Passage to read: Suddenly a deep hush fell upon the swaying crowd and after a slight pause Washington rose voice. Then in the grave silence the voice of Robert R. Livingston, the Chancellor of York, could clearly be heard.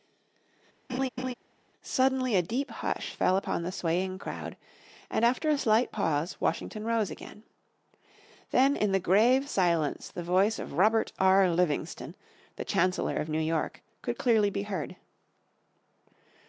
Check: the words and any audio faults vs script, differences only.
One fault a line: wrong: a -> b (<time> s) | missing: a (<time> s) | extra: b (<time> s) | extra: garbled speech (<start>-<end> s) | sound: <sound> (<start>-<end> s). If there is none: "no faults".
sound: laugh (0.9-1.3 s)
wrong: voice -> again (7.1 s)
extra: New (13.3 s)